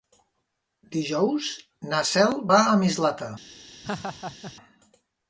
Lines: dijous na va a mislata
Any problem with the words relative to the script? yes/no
yes